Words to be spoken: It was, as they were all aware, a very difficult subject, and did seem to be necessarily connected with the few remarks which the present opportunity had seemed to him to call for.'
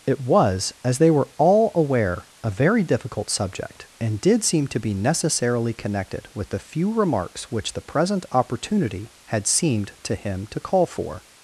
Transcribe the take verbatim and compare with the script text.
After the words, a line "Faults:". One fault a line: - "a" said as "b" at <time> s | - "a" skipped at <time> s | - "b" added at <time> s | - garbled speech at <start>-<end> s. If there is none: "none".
It was, as they were all aware, a very difficult subject, and did seem to be necessarily connected with the few remarks which the present opportunity had seemed to him to call for.'
Faults:
none